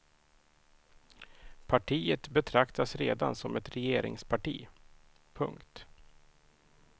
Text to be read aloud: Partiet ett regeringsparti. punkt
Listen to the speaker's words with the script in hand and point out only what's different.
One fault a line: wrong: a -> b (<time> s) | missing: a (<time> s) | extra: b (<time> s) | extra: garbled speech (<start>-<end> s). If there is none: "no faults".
extra: betraktas redan som (2.3 s)